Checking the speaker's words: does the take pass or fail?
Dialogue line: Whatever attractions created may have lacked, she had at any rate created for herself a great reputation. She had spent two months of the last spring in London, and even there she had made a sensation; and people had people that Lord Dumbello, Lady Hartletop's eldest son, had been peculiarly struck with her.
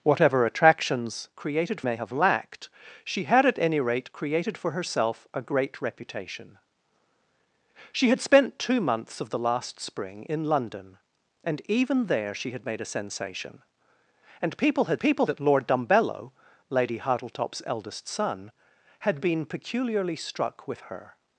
pass